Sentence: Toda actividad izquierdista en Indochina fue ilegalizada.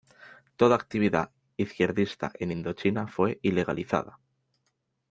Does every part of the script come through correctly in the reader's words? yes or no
yes